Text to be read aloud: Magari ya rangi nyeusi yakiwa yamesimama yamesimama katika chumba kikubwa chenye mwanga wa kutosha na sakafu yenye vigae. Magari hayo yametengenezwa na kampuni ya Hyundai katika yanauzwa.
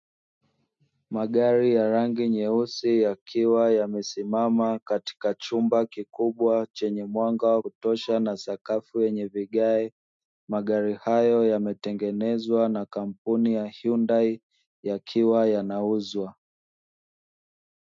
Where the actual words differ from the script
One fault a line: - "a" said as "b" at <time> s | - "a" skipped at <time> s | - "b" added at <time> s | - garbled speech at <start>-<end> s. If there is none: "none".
- "yamesimama" skipped at 4.8 s
- "katika" said as "yakiwa" at 14.8 s